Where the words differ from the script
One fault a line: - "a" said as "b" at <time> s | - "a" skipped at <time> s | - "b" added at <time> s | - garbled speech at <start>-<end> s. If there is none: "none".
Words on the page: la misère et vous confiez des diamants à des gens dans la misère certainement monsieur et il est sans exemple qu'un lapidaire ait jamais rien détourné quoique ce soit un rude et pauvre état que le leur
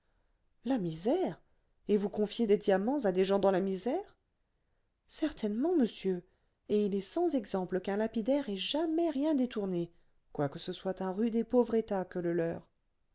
none